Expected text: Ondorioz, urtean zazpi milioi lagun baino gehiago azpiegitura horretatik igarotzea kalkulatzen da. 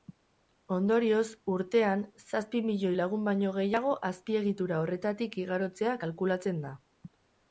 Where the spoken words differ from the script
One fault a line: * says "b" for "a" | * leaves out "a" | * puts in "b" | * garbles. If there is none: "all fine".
all fine